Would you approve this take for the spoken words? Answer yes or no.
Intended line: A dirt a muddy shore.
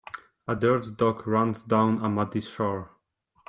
no